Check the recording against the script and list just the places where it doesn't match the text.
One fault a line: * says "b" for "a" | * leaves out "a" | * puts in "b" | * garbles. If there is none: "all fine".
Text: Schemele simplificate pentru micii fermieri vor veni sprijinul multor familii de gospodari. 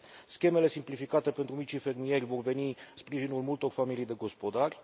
all fine